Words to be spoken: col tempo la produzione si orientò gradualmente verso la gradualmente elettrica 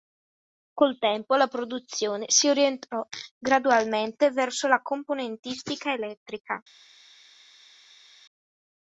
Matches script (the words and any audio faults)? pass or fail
fail